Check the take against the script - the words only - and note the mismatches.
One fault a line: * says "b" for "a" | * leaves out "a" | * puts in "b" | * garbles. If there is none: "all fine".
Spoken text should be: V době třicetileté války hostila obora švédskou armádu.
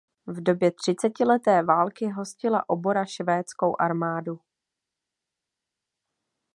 all fine